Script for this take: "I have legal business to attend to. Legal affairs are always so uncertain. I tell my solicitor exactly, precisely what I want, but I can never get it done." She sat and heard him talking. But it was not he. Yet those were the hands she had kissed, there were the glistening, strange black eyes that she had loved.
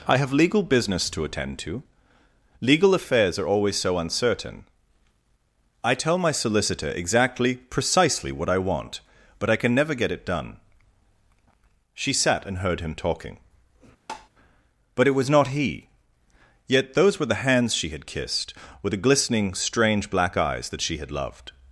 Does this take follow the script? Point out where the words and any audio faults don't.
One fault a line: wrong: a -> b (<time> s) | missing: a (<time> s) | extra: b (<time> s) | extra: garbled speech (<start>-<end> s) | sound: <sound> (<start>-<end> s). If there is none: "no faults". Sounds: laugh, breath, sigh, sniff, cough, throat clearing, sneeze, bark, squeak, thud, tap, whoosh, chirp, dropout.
sound: tap (14.1-14.3 s)
wrong: there were -> with (18.8 s)